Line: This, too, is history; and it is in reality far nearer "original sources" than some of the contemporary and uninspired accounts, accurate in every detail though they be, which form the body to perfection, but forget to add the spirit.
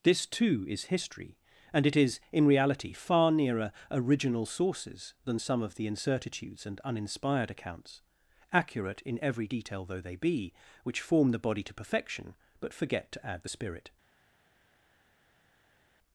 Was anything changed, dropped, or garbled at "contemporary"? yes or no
yes